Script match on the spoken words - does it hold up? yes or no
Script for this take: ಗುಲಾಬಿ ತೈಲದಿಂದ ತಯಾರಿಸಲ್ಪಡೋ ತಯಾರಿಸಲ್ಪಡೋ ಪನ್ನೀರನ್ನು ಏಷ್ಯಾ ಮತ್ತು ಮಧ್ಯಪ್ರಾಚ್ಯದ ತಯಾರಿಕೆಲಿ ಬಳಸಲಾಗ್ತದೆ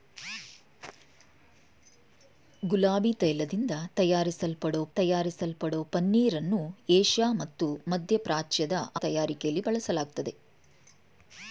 yes